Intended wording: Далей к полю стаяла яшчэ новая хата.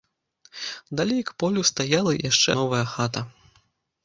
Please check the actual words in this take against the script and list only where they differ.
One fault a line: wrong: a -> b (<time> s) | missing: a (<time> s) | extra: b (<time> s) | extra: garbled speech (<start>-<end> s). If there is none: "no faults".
no faults